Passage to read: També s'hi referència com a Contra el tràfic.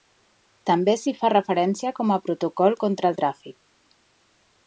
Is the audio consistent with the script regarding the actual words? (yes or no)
no